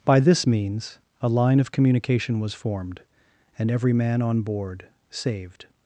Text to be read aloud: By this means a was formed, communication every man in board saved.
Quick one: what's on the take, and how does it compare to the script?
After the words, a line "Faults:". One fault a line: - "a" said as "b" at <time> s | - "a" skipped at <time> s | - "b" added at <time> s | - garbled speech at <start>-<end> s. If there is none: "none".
By this means a line of communication was formed, and every man on board saved.
Faults:
- "line of communication" added at 1.3 s
- "communication" said as "and" at 3.6 s
- "in" said as "on" at 4.2 s